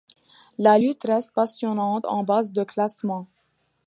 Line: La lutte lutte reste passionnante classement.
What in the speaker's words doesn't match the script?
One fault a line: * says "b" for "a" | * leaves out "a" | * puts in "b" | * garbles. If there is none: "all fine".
* leaves out "lutte"
* puts in "en base de"